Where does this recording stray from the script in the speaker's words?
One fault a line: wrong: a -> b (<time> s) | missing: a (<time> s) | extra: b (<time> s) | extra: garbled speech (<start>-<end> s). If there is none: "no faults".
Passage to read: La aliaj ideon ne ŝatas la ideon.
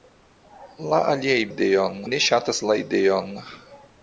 no faults